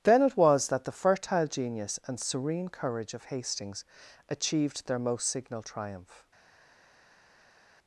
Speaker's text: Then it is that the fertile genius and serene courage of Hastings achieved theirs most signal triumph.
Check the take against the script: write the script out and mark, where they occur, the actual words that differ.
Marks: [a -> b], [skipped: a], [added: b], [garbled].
Then it [is -> was] that the fertile genius and serene courage of Hastings achieved [theirs -> their] most signal triumph.